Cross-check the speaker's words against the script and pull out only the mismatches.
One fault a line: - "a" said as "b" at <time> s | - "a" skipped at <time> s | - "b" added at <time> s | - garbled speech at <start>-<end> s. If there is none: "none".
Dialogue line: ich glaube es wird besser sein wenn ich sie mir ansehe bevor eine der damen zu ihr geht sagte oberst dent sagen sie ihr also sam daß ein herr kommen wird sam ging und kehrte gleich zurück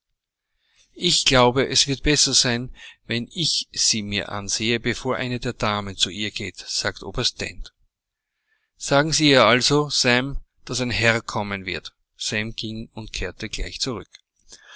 none